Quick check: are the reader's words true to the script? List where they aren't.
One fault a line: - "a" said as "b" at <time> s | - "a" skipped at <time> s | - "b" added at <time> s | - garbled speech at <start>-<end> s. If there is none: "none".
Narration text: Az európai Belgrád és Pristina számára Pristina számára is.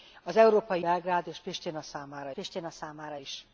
none